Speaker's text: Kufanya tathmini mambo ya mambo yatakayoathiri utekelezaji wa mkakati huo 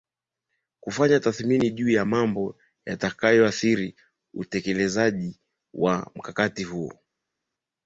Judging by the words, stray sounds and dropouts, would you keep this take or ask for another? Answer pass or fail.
fail